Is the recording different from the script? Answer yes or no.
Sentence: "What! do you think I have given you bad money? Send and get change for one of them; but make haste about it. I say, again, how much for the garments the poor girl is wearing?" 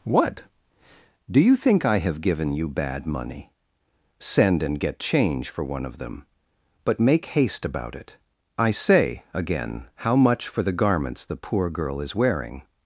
no